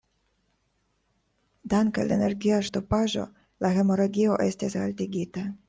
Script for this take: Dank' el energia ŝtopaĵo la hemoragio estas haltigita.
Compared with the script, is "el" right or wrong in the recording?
wrong